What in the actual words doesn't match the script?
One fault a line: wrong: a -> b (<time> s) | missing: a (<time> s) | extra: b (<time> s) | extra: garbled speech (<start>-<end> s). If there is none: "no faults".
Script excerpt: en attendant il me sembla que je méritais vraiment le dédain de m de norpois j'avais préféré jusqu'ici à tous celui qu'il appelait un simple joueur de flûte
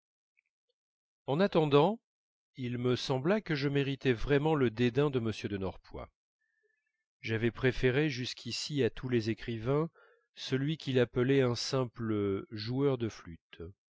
extra: les écrivains (9.1 s)